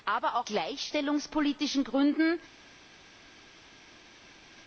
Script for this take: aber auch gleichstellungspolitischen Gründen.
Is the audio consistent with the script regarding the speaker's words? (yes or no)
yes